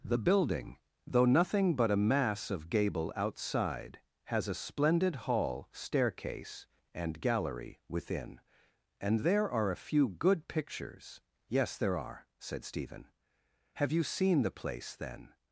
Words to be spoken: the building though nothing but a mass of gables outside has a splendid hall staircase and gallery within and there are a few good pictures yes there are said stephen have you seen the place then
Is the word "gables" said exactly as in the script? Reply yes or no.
no